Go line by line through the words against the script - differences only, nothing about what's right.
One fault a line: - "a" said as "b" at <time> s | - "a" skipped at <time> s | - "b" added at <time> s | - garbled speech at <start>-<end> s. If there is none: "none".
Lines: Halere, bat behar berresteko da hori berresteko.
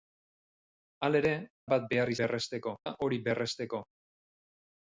none